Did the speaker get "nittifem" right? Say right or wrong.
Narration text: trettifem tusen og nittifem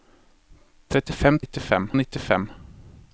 right